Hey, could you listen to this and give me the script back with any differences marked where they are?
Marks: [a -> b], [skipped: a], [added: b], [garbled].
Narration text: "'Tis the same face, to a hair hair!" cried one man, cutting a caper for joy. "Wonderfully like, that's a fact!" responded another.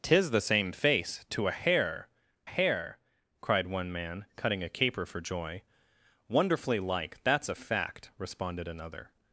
"'Tis the same face, to a hair hair!" cried one man, cutting a caper for joy. "Wonderfully like, that's a fact!" responded another.